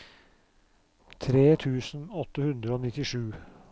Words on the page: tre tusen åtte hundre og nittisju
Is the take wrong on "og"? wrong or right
right